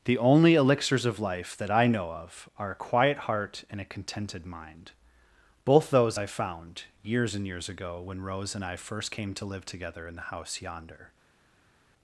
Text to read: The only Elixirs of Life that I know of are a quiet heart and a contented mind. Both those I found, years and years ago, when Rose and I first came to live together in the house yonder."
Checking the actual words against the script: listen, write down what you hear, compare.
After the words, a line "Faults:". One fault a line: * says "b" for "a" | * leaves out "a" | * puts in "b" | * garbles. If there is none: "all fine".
The only Elixirs of Life that I know of are a quiet heart and a contented mind. Both those I found, years and years ago, when Rose and I first came to live together in the house yonder."
Faults:
all fine